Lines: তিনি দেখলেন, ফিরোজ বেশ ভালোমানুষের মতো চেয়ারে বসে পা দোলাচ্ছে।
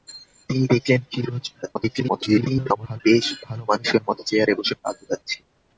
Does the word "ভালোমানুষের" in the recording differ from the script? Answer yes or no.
no